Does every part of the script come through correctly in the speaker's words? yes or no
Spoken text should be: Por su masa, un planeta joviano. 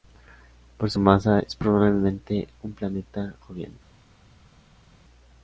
no